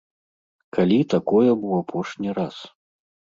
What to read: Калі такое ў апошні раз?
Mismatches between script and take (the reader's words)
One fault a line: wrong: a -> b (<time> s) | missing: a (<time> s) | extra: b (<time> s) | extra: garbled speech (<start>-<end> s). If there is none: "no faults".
no faults